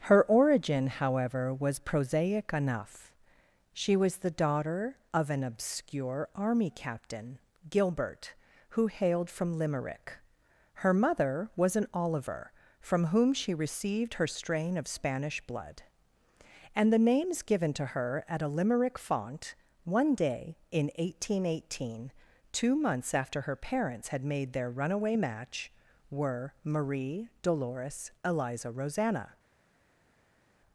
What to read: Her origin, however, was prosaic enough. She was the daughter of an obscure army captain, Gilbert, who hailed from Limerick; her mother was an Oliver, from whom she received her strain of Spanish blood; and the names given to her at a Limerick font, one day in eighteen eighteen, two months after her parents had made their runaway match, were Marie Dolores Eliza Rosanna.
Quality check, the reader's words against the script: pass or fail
pass